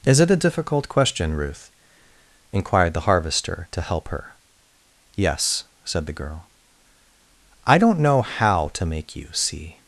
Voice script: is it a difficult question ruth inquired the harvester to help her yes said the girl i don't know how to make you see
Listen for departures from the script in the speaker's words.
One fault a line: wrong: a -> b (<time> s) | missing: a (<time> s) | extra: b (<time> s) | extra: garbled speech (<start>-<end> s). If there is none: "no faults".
no faults